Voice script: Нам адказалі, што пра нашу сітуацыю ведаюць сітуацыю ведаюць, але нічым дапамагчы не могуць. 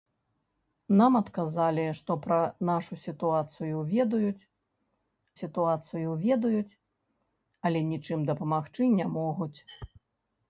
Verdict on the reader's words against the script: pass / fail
pass